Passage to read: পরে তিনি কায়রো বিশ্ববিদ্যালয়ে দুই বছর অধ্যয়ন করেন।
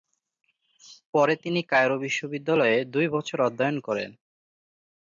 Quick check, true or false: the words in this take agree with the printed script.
true